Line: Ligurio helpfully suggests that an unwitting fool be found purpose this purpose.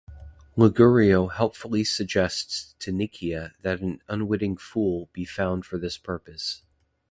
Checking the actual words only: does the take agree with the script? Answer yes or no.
no